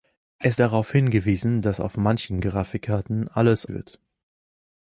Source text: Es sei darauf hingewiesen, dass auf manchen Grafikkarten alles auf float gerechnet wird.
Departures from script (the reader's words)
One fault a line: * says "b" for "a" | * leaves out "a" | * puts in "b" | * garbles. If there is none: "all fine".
* leaves out "sei"
* leaves out "auf float gerechnet"